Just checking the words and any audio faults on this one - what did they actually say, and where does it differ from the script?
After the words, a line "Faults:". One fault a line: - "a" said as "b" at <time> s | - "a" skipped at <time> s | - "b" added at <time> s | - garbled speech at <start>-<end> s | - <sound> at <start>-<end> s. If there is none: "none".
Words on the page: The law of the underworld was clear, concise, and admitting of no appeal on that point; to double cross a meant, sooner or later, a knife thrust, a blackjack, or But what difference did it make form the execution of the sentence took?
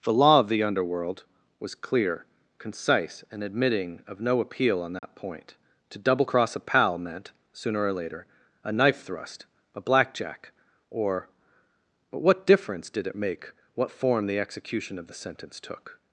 The law of the underworld was clear, concise, and admitting of no appeal on that point; to double cross a pal meant, sooner or later, a knife thrust, a blackjack, or But what difference did it make what form the execution of the sentence took?
Faults:
- dropout at 5.0-5.0 s
- "pal" added at 6.6 s
- "what" added at 13.7 s